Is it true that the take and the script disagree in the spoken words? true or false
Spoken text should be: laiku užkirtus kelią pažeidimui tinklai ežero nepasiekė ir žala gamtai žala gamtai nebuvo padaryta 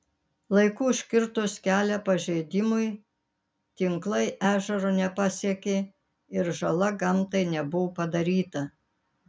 true